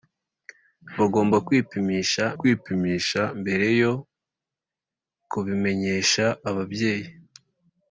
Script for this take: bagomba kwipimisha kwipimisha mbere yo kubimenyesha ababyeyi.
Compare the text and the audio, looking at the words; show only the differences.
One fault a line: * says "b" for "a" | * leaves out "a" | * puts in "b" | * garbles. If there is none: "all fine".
all fine